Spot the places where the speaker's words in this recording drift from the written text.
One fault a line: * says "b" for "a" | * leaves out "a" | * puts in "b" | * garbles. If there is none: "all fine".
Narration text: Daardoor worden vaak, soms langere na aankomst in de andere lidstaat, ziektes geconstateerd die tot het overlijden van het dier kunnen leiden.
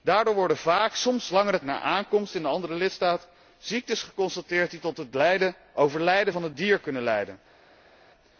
all fine